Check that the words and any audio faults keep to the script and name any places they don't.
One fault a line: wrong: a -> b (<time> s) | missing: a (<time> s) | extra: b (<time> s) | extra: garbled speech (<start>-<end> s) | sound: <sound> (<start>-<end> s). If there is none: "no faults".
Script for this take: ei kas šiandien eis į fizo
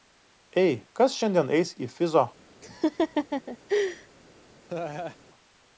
sound: laugh (2.6-4.1 s)
sound: laugh (4.7-5.2 s)